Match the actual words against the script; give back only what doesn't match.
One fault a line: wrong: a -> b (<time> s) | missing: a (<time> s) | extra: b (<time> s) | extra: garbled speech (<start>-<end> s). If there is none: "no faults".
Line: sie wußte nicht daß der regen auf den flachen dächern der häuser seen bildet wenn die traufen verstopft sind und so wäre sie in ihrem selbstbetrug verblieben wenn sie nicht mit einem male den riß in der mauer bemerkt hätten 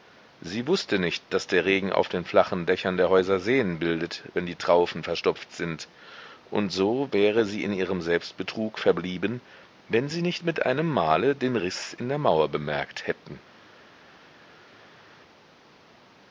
no faults